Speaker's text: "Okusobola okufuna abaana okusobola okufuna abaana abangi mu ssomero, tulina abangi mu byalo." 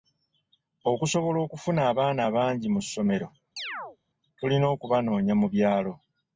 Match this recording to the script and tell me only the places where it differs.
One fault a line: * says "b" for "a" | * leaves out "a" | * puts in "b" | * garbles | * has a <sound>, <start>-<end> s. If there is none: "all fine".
* leaves out "okusobola okufuna abaana"
* has a chirp, 3.6-4.0 s
* says "okubanoonya" for "abangi"